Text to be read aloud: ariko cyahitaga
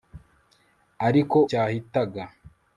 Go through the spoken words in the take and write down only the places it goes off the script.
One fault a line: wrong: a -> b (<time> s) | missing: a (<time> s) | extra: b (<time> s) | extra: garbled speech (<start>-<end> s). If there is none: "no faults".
no faults